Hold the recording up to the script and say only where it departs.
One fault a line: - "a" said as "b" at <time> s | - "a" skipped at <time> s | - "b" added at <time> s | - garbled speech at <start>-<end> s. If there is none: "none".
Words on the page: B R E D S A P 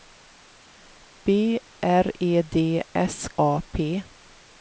none